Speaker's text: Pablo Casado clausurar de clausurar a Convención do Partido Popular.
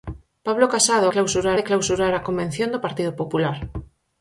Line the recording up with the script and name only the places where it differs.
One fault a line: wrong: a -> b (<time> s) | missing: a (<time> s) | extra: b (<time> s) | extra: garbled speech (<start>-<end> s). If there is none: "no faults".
no faults